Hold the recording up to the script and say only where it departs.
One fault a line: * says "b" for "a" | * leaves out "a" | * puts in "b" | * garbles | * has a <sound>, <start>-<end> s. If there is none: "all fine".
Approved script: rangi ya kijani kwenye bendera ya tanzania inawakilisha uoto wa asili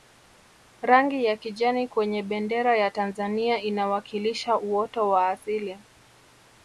all fine